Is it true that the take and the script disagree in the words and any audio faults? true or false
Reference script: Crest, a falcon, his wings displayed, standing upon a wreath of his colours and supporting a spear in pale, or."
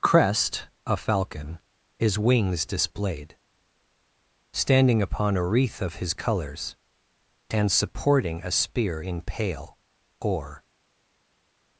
false